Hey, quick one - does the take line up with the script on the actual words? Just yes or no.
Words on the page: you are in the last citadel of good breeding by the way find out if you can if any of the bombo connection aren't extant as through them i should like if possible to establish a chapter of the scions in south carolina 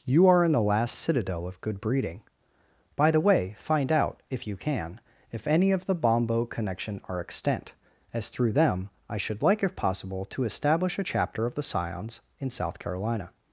no